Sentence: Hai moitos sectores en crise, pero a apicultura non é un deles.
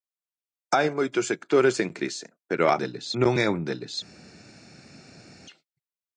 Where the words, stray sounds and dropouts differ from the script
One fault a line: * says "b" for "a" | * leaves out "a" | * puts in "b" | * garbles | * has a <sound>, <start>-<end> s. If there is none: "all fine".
* says "deles" for "apicultura"